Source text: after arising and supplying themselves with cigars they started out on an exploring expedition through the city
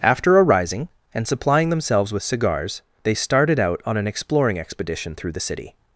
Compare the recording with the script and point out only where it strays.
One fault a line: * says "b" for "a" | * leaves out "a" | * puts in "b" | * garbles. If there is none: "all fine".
all fine